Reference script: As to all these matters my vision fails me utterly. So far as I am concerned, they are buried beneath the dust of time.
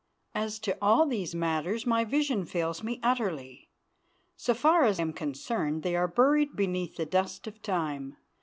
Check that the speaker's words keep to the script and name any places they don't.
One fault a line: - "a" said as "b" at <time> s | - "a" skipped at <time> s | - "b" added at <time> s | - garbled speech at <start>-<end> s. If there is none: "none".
- "I" skipped at 5.0 s